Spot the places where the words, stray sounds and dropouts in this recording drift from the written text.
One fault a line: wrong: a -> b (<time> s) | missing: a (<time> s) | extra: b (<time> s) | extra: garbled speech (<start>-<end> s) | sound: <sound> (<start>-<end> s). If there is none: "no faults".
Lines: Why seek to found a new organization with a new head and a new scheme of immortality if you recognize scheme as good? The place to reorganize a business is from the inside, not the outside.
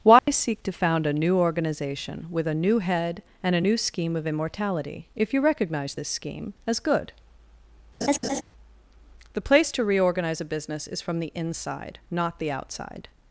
sound: dropout (0.2-0.3 s)
extra: this (5.9 s)
sound: laugh (8.0-8.4 s)